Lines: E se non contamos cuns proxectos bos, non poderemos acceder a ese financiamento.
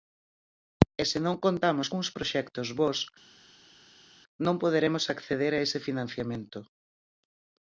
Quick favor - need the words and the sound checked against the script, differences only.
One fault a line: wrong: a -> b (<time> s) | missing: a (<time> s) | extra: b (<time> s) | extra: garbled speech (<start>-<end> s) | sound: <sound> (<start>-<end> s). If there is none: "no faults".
no faults